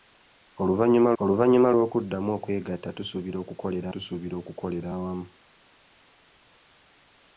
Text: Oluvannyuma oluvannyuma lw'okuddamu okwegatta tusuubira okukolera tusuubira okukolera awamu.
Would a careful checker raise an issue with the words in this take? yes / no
no